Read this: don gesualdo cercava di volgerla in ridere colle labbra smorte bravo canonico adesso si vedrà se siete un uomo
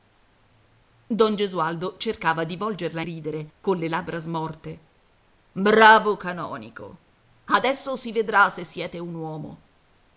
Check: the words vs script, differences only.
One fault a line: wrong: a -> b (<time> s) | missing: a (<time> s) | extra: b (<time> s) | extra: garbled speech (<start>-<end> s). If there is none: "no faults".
missing: in (3.0 s)